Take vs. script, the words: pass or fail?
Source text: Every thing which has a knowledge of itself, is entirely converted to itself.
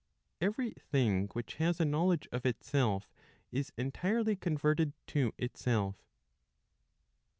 pass